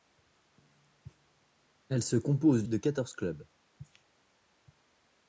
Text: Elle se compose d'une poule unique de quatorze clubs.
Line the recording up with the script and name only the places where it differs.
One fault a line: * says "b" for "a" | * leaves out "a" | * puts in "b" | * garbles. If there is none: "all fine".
* leaves out "d'une poule unique"